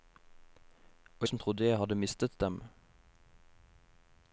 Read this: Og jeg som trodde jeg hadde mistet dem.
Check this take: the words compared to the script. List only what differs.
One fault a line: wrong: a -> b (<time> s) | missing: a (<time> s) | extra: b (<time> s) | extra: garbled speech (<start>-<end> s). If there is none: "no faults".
missing: jeg (1.3 s)